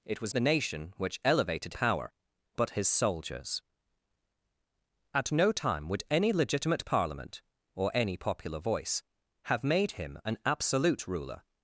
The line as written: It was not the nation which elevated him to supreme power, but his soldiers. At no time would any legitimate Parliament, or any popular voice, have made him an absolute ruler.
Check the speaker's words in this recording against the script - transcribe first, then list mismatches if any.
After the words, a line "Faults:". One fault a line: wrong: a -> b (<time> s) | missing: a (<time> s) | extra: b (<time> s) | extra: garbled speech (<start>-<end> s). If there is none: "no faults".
It was the nation which elevated power, but his soldiers. At no time would any legitimate Parliament, or any popular voice, have made him an absolute ruler.
Faults:
missing: not (0.3 s)
missing: him to supreme (1.7 s)